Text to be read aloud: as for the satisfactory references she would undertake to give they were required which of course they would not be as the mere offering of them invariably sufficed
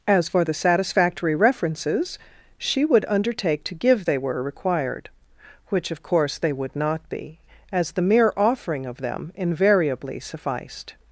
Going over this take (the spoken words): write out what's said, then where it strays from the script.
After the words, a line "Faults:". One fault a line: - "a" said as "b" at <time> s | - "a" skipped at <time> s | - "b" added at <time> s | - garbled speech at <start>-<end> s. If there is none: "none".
as for the satisfactory references she would undertake to give they were required which of course they would not be as the mere offering of them invariably sufficed
Faults:
none